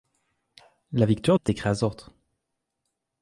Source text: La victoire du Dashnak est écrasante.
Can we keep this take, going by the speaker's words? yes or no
no